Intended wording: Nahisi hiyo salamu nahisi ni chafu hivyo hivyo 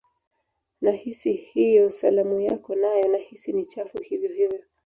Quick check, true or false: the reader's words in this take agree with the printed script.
false